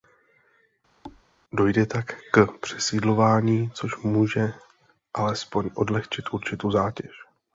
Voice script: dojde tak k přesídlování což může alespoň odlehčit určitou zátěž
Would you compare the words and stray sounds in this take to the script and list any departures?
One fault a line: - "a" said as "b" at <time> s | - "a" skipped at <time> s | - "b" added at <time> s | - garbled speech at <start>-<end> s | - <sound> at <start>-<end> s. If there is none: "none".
- thud at 1.0-1.2 s